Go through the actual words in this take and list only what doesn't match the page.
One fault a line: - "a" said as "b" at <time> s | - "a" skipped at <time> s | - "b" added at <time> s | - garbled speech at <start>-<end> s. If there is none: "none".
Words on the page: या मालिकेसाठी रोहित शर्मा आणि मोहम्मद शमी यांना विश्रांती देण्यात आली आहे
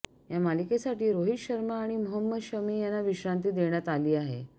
none